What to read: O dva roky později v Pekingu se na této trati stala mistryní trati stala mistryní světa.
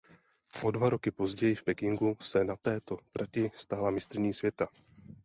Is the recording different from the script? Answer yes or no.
yes